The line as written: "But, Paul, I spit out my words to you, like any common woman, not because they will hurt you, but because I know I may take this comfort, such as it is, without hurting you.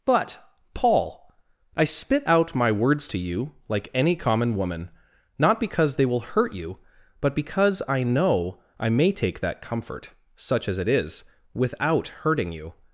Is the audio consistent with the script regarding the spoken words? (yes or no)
no